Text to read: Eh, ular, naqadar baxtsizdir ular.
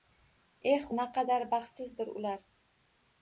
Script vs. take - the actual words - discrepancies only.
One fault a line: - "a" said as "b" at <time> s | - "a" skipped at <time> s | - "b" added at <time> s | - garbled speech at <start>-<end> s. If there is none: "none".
- "ular" skipped at 0.9 s